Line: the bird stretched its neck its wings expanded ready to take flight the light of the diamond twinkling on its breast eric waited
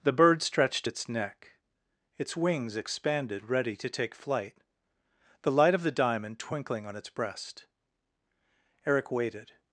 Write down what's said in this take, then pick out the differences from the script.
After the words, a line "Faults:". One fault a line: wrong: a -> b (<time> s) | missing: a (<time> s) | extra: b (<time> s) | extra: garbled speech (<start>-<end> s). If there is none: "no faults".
the bird stretched its neck its wings expanded ready to take flight the light of the diamond twinkling on its breast eric waited
Faults:
no faults